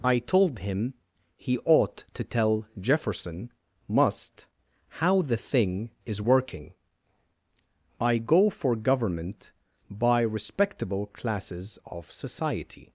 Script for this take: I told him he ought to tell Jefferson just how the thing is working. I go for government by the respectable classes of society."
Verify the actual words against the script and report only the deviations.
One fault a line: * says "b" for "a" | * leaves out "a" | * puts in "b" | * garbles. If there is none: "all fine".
* says "must" for "just"
* leaves out "the"